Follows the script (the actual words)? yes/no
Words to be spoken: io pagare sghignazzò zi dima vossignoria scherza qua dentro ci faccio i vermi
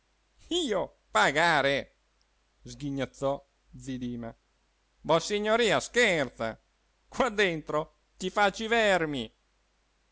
yes